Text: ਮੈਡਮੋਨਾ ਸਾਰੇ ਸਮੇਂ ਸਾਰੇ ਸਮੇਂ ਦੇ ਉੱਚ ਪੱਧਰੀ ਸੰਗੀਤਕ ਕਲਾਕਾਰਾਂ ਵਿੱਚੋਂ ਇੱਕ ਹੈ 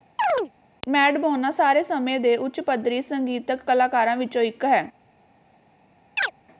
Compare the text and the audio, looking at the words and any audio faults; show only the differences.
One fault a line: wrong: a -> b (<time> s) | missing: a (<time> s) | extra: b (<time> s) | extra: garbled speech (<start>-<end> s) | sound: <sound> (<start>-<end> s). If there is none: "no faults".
sound: chirp (0.2-0.5 s)
missing: ਸਾਰੇ ਸਮੇਂ (2.2 s)
sound: chirp (6.2-6.3 s)